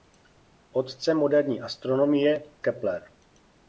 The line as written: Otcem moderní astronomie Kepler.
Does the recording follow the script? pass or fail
pass